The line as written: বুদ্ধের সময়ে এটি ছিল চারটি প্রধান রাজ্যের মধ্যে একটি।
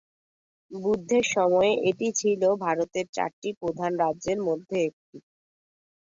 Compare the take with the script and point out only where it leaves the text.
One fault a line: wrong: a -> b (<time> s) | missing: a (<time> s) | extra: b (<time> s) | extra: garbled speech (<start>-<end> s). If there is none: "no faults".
extra: ভারতের (2.6 s)